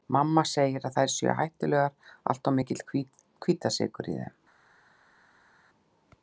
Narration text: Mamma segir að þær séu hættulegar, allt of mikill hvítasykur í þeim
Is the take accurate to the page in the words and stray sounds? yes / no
yes